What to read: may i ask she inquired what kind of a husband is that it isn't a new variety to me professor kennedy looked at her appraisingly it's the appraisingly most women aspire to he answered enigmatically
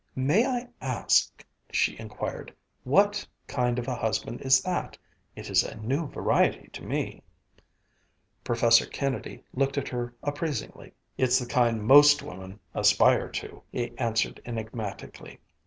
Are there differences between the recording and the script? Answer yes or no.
yes